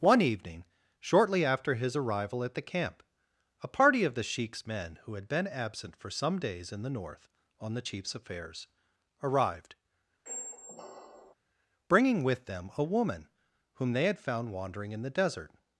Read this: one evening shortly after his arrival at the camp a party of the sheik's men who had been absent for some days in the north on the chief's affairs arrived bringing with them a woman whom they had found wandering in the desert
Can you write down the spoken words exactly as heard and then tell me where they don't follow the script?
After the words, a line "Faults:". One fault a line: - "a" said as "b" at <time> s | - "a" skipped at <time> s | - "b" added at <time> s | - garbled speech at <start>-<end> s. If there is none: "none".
one evening shortly after his arrival at the camp a party of the sheik's men who had been absent for some days in the north on the chief's affairs arrived bringing with them a woman whom they had found wandering in the desert
Faults:
none